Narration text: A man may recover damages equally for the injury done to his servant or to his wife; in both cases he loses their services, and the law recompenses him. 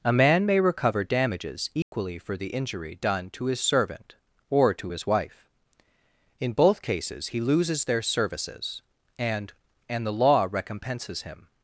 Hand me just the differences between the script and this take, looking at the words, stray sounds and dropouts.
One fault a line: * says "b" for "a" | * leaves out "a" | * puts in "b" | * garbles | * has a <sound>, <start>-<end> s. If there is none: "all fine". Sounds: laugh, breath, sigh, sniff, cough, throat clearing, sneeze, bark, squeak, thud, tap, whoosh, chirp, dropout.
* has a dropout, 1.8-1.9 s
* puts in "and"